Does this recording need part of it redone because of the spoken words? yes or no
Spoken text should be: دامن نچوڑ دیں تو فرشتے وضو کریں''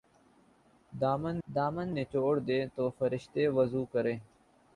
yes